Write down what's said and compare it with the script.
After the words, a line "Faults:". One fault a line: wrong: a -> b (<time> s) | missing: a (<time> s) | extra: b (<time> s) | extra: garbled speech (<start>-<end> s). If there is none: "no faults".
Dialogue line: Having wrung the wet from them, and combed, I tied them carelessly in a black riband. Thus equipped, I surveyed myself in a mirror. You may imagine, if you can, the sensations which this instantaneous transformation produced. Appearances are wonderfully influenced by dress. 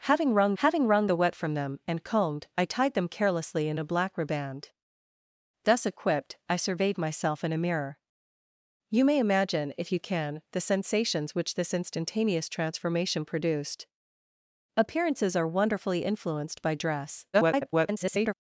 Having wrung having wrung the wet from them, and combed, I tied them carelessly in a black riband. Thus equipped, I surveyed myself in a mirror. You may imagine, if you can, the sensations which this instantaneous transformation produced. Appearances are wonderfully influenced by dress. [garbled]
Faults:
extra: having wrung (0.6 s)
extra: garbled speech (17.3-18.3 s)